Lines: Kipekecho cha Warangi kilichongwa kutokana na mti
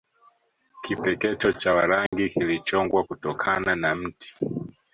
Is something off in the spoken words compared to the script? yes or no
no